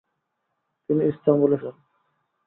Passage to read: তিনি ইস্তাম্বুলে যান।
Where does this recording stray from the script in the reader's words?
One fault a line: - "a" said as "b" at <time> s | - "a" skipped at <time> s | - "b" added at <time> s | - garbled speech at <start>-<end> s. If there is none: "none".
none